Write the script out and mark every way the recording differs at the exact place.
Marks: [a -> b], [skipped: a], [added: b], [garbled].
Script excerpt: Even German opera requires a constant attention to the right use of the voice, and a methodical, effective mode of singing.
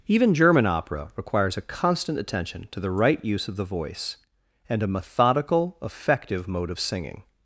Even German opera requires a constant attention to the right use of the voice, and a methodical, effective mode of singing.